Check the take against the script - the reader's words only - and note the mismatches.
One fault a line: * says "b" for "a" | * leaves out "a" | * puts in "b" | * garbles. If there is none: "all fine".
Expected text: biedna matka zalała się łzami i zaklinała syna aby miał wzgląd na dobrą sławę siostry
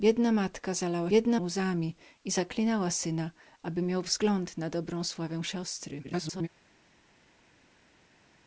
* says "biedna" for "się"
* garbles